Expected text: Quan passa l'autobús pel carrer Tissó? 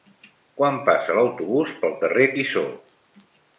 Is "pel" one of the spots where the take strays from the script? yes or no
no